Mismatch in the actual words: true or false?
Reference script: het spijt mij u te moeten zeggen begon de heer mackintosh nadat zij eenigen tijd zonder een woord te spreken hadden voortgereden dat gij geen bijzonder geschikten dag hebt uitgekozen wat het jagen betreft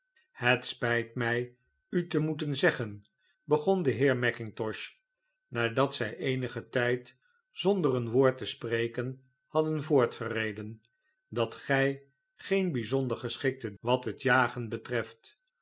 true